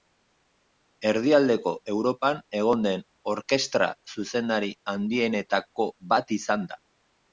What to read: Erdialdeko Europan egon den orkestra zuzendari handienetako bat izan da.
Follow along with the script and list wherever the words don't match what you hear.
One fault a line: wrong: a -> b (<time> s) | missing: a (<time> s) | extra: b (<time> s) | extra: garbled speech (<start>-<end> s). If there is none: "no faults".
no faults